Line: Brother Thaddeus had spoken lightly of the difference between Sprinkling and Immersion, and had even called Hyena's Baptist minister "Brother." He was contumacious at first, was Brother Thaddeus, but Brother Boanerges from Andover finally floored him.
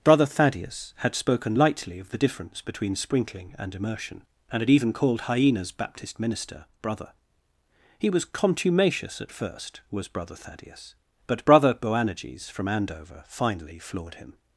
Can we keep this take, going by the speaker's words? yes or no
yes